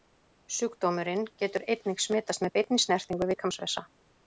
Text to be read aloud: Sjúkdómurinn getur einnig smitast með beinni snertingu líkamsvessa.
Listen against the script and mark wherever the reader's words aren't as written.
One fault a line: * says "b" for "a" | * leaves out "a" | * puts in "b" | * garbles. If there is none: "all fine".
all fine